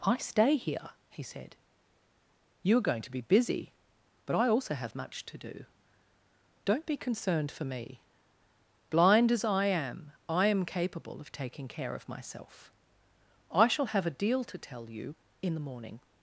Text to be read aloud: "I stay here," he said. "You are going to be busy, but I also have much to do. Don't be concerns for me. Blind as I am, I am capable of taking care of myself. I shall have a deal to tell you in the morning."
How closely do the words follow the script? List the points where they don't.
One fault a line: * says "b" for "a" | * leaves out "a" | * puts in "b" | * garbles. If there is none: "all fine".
* says "concerned" for "concerns"